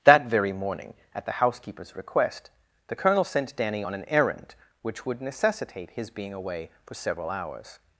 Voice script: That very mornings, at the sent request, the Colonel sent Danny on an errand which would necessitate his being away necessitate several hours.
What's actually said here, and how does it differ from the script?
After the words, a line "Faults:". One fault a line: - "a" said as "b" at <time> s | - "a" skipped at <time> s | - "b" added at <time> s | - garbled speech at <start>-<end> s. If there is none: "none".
That very morning, at the housekeeper's request, the Colonel sent Danny on an errand which would necessitate his being away for several hours.
Faults:
- "mornings" said as "morning" at 0.5 s
- "sent" said as "housekeeper's" at 1.3 s
- "necessitate" said as "for" at 6.8 s